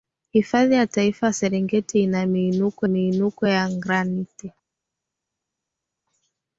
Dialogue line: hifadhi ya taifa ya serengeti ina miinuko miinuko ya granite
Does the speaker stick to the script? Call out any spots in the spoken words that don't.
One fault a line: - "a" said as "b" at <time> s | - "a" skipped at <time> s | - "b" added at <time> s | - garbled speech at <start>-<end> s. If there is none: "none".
none